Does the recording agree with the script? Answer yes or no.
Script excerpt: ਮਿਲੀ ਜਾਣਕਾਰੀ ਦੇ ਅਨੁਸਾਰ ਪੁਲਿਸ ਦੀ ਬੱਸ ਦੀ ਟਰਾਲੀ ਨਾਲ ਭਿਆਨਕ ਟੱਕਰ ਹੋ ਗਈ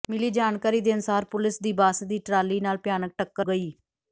no